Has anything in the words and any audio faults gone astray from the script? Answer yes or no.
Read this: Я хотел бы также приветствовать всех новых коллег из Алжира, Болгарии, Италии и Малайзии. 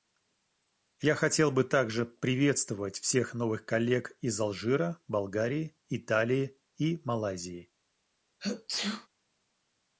yes